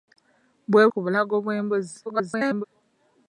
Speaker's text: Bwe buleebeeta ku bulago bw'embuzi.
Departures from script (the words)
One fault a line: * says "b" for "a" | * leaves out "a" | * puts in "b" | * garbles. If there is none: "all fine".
* leaves out "buleebeeta"
* garbles